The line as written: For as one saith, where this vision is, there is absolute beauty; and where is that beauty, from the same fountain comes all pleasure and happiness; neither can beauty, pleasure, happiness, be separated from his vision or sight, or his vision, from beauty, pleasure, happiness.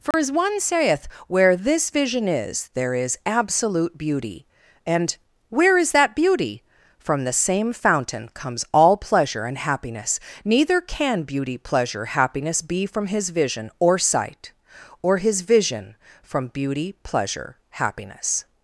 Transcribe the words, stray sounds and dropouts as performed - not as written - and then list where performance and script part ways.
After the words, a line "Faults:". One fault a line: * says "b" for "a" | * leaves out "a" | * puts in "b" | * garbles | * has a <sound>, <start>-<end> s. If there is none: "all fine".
For as one saith, where this vision is, there is absolute beauty; and where is that beauty, from the same fountain comes all pleasure and happiness; neither can beauty, pleasure, happiness, be from his vision or sight, or his vision, from beauty, pleasure, happiness.
Faults:
* has a dropout, 0.1-0.1 s
* leaves out "separated"